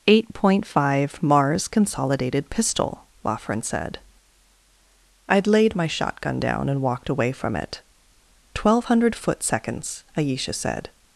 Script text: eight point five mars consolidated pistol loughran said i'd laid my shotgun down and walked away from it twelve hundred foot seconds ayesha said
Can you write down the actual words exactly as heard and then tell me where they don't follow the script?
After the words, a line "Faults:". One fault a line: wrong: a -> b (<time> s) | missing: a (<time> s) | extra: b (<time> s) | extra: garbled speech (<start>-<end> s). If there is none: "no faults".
eight point five mars consolidated pistol loughran said i'd laid my shotgun down and walked away from it twelve hundred foot seconds ayesha said
Faults:
no faults